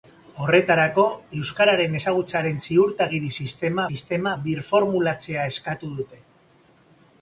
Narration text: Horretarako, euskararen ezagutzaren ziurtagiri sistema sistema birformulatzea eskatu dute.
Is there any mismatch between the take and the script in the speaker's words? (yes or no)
no